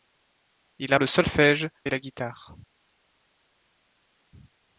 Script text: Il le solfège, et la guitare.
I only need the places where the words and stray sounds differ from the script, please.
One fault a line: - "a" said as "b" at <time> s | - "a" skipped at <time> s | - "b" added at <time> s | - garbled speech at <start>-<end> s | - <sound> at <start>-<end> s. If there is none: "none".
none